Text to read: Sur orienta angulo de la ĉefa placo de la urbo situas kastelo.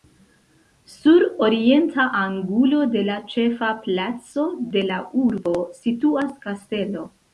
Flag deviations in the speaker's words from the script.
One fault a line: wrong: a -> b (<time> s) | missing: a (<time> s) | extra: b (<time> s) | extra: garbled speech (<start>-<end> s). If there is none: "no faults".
no faults